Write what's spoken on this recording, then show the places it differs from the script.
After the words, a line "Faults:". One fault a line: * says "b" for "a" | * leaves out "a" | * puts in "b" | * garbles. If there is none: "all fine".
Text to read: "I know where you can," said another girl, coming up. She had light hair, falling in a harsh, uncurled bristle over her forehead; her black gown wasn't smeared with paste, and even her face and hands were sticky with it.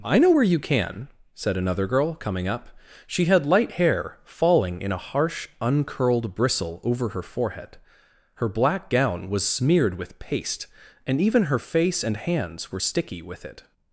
"I know where you can," said another girl, coming up. She had light hair, falling in a harsh, uncurled bristle over her forehead; her black gown was smeared with paste, and even her face and hands were sticky with it.
Faults:
* says "was" for "wasn't"